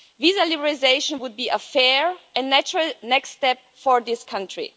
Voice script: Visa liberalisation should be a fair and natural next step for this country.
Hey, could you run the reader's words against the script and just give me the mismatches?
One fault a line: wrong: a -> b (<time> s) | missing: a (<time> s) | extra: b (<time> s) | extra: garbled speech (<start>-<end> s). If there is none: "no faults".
wrong: should -> would (1.2 s)